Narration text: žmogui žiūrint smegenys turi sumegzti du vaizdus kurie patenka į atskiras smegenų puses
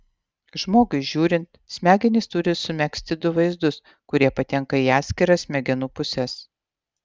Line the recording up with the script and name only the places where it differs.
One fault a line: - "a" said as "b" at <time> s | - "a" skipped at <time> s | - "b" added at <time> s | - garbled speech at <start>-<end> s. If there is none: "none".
none